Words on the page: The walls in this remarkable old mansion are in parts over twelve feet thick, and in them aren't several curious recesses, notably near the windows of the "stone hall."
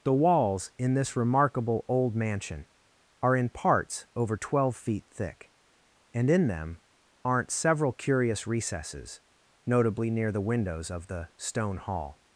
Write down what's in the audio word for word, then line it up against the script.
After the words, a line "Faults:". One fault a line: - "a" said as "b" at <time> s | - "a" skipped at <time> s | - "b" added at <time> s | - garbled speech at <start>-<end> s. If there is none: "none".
The walls in this remarkable old mansion are in parts over twelve feet thick, and in them aren't several curious recesses, notably near the windows of the "stone hall."
Faults:
none